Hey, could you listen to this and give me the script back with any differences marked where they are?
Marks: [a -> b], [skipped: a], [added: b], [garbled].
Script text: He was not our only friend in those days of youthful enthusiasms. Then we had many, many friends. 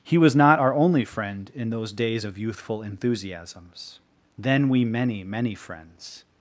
He was not our only friend in those days of youthful enthusiasms. Then we [skipped: had] many, many friends.